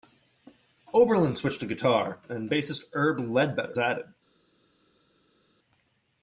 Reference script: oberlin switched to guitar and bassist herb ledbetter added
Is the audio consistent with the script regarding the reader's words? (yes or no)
yes